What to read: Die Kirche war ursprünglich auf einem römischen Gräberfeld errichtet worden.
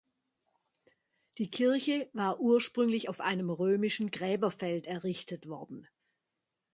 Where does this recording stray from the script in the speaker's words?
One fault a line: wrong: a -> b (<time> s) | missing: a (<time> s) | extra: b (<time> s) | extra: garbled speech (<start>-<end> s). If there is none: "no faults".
no faults